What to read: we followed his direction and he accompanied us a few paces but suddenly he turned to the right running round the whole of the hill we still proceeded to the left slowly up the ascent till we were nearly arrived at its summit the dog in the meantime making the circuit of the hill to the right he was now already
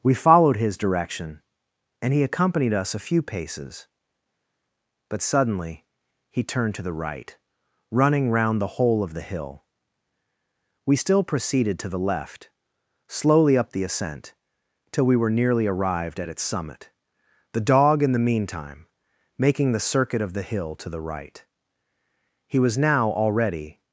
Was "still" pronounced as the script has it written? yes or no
yes